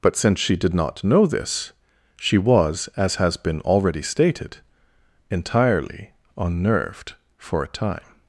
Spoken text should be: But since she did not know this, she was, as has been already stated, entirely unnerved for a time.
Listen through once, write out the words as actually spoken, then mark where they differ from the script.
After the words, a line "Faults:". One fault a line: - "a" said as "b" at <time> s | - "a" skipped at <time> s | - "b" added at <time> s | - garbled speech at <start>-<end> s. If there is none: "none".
But since she did not know this, she was, as has been already stated, entirely unnerved for a time.
Faults:
none